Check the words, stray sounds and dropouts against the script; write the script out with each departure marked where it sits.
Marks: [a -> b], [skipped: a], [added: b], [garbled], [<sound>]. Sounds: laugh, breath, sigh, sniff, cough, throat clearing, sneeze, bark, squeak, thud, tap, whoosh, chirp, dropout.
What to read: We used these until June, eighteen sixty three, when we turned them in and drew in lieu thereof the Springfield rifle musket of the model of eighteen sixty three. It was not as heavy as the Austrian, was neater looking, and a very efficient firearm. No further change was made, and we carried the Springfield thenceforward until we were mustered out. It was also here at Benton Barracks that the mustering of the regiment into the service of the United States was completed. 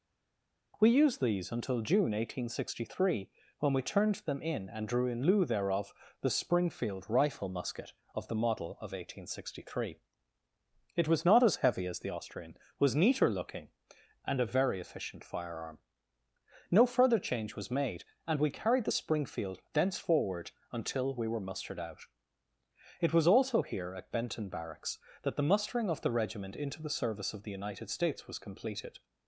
We used these until June, eighteen sixty three, when we turned them in and drew in lieu thereof the Springfield rifle musket of the model of eighteen sixty three. It was not as heavy as the Austrian, was neater looking, and a very efficient firearm. No further change was made, and we carried the Springfield thenceforward until we were mustered out. It was also here at Benton Barracks that the mustering of the regiment into the service of the United States was completed.